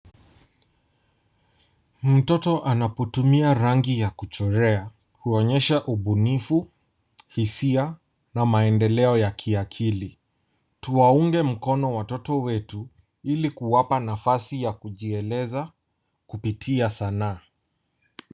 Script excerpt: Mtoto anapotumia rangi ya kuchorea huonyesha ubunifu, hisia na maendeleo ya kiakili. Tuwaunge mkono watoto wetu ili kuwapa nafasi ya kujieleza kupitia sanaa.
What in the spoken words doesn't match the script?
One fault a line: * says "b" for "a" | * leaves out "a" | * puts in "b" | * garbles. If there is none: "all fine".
all fine